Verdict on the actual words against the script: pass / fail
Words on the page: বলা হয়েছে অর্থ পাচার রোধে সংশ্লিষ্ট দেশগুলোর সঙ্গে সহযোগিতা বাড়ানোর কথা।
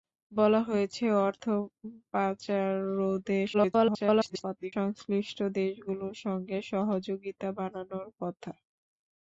fail